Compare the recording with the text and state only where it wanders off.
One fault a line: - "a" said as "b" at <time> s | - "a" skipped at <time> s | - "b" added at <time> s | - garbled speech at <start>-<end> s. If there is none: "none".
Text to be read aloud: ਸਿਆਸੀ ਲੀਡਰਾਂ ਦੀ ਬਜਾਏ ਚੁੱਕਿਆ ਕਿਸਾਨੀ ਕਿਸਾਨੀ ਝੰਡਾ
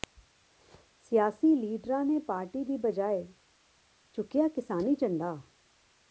- "ਨੇ ਪਾਰਟੀ" added at 2.0 s
- "ਕਿਸਾਨੀ" skipped at 5.0 s